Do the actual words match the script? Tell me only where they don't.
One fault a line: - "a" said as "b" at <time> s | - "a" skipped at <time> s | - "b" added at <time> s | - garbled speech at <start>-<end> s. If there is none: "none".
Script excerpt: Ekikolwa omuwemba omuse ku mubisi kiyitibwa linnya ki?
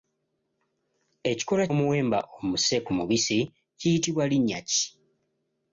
none